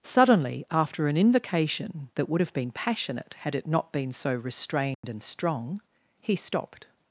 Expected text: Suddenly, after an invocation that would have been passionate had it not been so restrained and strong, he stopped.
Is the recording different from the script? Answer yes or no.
no